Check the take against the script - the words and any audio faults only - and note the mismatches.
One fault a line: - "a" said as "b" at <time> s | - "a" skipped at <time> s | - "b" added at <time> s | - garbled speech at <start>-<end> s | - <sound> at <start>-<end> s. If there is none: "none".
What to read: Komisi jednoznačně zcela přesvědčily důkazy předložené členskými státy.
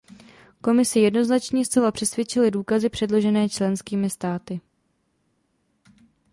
none